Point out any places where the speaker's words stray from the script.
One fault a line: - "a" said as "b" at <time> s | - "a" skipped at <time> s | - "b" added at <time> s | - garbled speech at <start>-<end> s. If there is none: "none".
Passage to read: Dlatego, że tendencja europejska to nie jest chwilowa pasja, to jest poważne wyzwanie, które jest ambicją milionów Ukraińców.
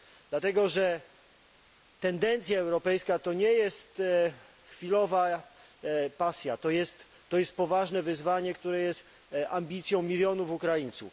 none